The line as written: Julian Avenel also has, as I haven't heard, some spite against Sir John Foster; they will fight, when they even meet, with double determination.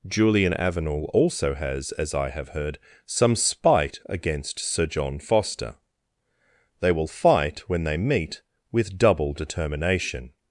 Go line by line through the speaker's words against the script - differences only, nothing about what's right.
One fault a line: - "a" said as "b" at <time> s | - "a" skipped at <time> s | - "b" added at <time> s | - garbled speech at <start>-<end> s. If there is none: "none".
- "haven't" said as "have" at 2.3 s
- "even" skipped at 8.0 s